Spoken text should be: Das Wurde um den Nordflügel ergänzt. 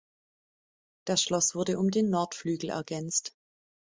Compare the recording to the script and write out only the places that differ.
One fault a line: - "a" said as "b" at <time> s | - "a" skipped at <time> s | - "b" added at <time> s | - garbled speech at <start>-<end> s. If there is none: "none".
- "Schloss" added at 1.2 s